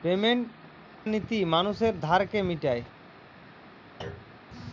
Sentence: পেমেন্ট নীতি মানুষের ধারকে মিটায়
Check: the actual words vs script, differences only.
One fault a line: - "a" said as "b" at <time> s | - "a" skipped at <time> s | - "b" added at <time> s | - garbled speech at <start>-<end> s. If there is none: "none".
none